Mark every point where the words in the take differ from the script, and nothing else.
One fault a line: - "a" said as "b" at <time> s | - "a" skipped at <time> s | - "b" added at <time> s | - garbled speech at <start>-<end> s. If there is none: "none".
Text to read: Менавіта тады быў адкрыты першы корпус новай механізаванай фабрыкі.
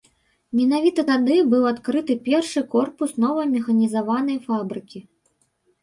none